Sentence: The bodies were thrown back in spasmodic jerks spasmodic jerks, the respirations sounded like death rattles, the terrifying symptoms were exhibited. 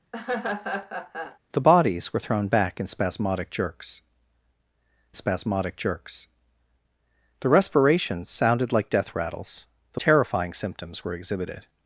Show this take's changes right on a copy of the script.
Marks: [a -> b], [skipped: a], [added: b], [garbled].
The bodies were thrown back in spasmodic jerks spasmodic jerks, the respirations sounded like death rattles, the terrifying symptoms were exhibited.